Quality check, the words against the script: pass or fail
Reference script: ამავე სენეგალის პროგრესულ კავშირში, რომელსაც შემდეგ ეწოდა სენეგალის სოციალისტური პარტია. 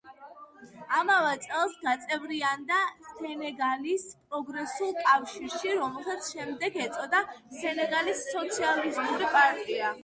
fail